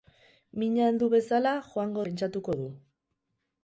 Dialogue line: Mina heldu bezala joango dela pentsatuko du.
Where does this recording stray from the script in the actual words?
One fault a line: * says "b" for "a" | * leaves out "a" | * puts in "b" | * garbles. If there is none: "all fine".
* leaves out "dela"